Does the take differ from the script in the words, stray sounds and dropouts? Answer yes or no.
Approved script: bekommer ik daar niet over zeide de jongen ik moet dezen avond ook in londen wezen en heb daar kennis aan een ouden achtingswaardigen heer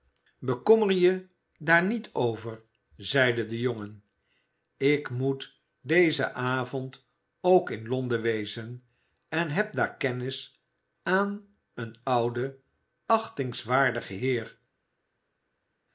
yes